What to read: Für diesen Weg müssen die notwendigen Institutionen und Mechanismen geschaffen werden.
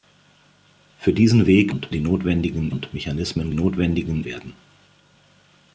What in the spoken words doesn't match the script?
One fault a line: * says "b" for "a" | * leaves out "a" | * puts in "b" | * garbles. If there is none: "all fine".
* says "und" for "müssen"
* leaves out "Institutionen"
* says "notwendigen" for "geschaffen"